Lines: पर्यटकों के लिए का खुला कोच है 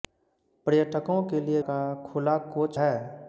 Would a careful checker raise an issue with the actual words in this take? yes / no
no